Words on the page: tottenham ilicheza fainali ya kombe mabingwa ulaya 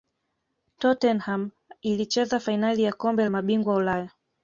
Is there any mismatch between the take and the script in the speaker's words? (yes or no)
no